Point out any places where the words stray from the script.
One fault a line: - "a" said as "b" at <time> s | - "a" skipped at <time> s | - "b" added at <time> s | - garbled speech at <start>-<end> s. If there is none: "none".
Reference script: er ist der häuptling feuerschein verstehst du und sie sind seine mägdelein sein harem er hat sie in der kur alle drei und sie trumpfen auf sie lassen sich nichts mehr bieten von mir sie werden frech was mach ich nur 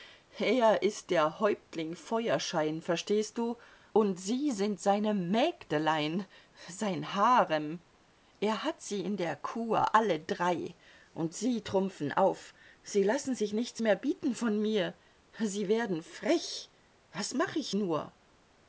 none